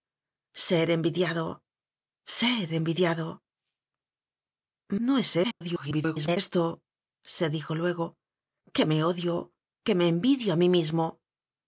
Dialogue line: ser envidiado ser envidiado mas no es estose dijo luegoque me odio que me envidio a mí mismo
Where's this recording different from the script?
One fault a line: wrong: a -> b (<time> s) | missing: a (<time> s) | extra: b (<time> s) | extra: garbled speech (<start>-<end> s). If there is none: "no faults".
missing: mas (3.3 s)
extra: garbled speech (5.4-6.4 s)